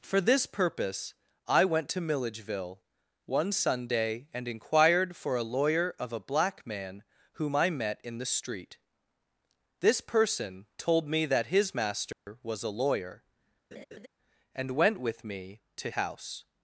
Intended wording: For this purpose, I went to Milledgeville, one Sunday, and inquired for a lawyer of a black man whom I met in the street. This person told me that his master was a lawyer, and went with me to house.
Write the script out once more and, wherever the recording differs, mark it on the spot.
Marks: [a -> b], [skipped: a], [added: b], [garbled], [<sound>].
For this purpose, I went to Milledgeville, one Sunday, and inquired for a lawyer of a black man whom I met in the street. This person told me that his master [dropout] was a lawyer, [laugh] and went with me to house.